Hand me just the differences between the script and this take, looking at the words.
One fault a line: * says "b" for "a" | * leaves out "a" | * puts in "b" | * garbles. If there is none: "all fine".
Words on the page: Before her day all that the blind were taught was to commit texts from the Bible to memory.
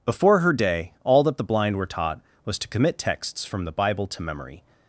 all fine